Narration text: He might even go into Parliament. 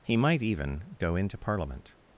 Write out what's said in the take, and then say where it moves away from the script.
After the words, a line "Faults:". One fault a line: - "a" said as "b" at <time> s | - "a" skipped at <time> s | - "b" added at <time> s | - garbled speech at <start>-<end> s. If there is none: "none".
He might even go into Parliament.
Faults:
none